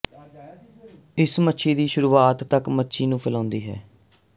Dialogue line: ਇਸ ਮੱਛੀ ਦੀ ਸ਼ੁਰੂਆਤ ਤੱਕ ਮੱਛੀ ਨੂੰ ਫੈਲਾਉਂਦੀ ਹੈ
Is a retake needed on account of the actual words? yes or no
no